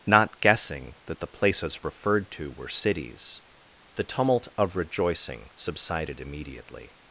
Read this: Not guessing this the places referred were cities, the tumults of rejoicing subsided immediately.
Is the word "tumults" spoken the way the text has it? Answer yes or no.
no